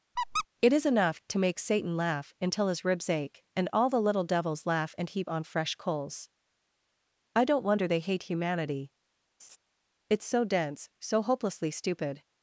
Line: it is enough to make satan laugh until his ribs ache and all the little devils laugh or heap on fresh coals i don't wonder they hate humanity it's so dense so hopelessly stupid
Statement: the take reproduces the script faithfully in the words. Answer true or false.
false